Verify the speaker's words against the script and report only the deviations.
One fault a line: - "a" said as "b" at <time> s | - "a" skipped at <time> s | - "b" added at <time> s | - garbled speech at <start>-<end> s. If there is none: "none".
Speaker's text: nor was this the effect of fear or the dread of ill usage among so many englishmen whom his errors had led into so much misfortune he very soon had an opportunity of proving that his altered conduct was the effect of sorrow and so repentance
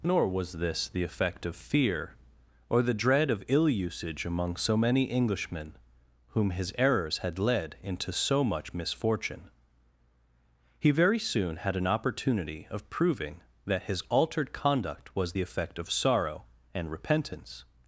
- "so" skipped at 16.9 s